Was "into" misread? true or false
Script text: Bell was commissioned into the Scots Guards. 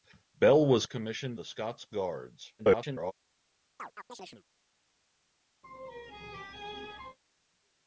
true